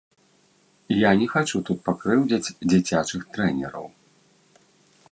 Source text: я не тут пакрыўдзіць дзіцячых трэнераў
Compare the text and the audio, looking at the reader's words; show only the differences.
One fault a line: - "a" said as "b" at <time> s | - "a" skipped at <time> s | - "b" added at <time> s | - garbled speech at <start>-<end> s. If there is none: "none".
- "хачу" added at 1.3 s